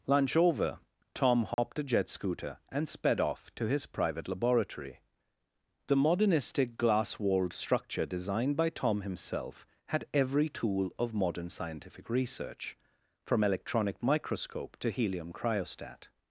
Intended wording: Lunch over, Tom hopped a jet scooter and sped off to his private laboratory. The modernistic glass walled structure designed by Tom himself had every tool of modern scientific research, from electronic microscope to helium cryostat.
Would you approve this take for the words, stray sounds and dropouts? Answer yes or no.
no